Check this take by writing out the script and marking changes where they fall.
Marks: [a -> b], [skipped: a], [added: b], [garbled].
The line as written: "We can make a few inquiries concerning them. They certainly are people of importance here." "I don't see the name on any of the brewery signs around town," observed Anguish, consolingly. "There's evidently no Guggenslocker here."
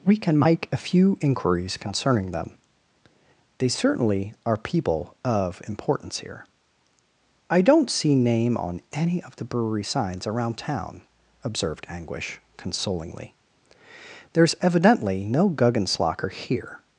"We can make a few inquiries concerning them. They certainly are people of importance here." "I don't see [skipped: the] name on any of the brewery signs around town," observed Anguish, consolingly. "There's evidently no Guggenslocker here."